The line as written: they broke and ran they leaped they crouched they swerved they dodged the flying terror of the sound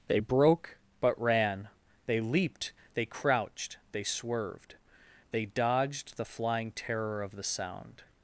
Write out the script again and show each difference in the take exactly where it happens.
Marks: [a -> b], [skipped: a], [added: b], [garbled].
they broke [and -> but] ran they leaped they crouched they swerved they dodged the flying terror of the sound